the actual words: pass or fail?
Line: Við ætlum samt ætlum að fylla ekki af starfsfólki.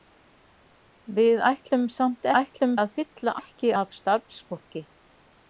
pass